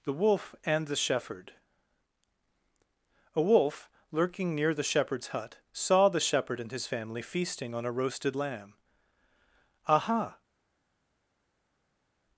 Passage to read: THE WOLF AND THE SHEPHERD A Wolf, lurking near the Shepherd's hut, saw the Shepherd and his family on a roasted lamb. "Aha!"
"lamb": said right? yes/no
yes